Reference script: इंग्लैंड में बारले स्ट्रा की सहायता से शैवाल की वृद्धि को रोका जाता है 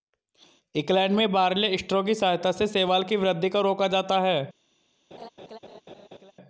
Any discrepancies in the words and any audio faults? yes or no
yes